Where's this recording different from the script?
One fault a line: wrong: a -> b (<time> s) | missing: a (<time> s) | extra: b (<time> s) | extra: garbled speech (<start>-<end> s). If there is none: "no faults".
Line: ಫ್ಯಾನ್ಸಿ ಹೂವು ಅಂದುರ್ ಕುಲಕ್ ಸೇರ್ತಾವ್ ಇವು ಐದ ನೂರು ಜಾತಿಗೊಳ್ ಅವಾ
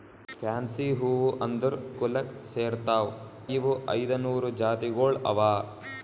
no faults